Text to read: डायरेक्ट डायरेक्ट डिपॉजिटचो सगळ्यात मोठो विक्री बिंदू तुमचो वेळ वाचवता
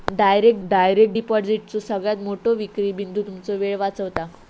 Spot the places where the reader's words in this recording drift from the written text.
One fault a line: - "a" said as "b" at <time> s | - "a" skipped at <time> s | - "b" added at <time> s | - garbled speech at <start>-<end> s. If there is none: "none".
none